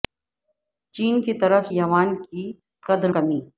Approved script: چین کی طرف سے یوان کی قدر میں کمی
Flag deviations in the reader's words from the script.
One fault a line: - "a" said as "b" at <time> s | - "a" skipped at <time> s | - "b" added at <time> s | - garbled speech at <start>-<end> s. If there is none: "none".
- "سے" skipped at 1.7 s
- "میں" skipped at 3.1 s